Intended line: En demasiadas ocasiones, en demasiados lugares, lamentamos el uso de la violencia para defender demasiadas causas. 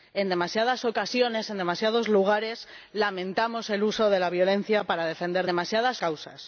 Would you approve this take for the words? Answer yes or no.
yes